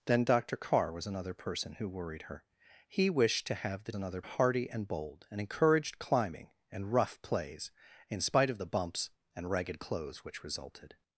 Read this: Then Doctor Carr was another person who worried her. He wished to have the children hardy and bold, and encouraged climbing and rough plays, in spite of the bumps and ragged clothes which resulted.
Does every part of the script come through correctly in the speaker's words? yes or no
no